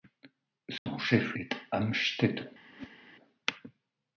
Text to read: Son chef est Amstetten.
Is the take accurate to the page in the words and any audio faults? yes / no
no